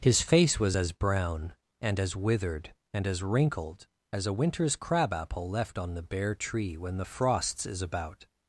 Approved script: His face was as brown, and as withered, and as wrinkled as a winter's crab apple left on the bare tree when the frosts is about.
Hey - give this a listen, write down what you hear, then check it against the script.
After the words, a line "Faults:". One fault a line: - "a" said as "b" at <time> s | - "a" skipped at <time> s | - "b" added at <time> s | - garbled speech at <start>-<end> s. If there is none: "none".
His face was as brown, and as withered, and as wrinkled as a winter's crab apple left on the bare tree when the frosts is about.
Faults:
none